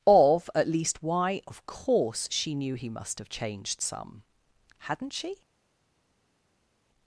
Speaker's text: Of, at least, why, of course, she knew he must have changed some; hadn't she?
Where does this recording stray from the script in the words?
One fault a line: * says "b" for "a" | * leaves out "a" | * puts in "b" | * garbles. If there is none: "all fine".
all fine